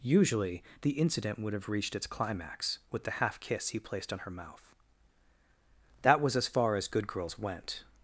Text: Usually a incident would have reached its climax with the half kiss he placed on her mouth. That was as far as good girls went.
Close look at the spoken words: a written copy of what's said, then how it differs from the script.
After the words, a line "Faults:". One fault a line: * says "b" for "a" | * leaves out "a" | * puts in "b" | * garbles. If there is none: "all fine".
Usually the incident would have reached its climax with the half kiss he placed on her mouth. That was as far as good girls went.
Faults:
* says "the" for "a"